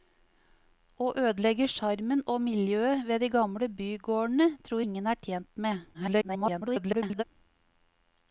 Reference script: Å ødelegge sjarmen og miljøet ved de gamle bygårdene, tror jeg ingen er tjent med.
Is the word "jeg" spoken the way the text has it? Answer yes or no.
no